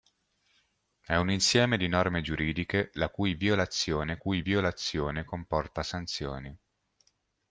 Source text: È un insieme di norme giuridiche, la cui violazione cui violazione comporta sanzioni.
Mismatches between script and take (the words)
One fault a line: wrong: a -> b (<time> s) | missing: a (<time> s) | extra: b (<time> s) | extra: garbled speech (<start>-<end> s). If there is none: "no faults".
no faults